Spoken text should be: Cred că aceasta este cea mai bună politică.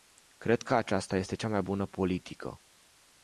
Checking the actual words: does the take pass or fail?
pass